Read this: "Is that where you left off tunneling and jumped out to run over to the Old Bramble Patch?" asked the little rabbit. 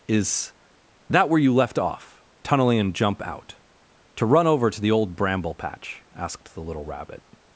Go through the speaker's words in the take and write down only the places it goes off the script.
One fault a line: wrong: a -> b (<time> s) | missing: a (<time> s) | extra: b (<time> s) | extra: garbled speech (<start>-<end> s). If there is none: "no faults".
wrong: jumped -> jump (3.0 s)